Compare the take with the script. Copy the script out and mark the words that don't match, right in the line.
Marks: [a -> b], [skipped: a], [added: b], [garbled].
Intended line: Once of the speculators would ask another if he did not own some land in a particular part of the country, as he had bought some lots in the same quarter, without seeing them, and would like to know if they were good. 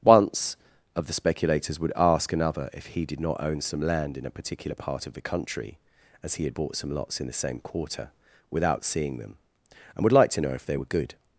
Once of the speculators would ask another if he did not own some land in a particular part of the country, as he had bought some lots in the same quarter, without seeing them, and would like to know if they were good.